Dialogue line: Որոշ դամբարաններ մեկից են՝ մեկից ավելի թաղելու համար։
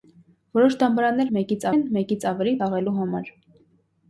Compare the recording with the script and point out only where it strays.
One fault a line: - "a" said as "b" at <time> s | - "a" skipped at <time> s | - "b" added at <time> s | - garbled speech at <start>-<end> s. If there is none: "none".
none